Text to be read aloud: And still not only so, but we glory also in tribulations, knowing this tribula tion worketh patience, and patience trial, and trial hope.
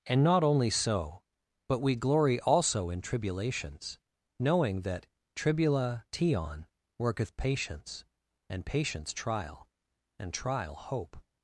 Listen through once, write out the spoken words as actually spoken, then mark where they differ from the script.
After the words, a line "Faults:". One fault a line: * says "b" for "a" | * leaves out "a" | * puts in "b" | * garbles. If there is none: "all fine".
And not only so, but we glory also in tribulations, knowing that tribula tion worketh patience, and patience trial, and trial hope.
Faults:
* leaves out "still"
* says "that" for "this"